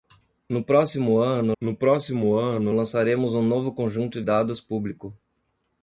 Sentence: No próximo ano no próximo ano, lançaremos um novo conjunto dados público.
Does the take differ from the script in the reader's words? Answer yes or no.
no